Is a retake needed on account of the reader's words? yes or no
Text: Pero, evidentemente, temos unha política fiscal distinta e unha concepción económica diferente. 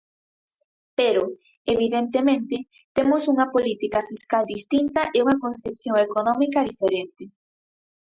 no